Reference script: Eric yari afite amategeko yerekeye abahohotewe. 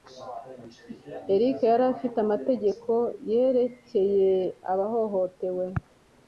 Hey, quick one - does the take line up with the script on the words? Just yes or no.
yes